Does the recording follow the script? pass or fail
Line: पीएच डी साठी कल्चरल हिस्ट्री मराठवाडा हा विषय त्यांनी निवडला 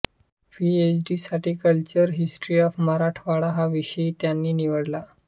fail